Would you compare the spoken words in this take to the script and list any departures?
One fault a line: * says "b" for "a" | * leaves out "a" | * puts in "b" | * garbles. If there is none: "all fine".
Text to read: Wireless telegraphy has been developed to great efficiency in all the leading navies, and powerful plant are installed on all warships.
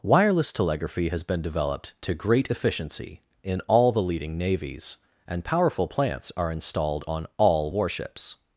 * says "plants" for "plant"